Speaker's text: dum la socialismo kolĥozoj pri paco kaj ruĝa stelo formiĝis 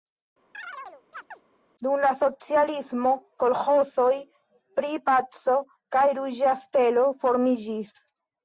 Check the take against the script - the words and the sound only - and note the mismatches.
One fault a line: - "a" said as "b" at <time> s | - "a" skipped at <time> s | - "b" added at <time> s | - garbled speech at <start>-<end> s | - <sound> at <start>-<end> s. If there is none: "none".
- chirp at 0.5-1.4 s